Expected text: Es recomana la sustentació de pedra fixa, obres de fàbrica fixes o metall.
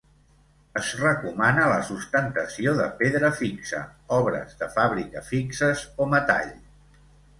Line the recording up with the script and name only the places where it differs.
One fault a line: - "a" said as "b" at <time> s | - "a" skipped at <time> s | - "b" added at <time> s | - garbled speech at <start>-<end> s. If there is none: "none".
none